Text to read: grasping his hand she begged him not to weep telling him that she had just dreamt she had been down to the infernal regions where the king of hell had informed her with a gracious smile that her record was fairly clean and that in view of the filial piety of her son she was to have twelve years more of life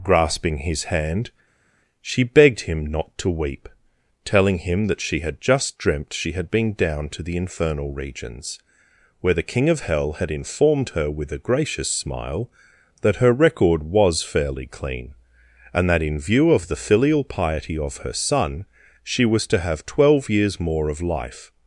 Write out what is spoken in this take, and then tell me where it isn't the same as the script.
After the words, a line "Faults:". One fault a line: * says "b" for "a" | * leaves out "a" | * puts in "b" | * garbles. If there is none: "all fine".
grasping his hand she begged him not to weep telling him that she had just dreamt she had been down to the infernal regions where the king of hell had informed her with a gracious smile that her record was fairly clean and that in view of the filial piety of her son she was to have twelve years more of life
Faults:
all fine